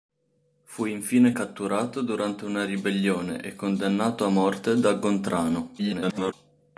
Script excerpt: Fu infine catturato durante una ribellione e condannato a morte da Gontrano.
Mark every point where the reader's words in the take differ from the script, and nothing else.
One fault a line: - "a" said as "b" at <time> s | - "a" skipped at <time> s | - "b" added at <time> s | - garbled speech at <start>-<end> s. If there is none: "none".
- garbled speech at 5.8-6.3 s